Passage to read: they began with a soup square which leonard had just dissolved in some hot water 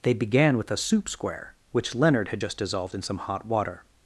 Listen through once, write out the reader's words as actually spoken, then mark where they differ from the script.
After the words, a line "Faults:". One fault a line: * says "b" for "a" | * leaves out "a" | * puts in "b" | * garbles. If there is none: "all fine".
they began with a soup square which leonard had just dissolved in some hot water
Faults:
all fine